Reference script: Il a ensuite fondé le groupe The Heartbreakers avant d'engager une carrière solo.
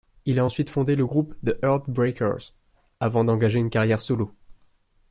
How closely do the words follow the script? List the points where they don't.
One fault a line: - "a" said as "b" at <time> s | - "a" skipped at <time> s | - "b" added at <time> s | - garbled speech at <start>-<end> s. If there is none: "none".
none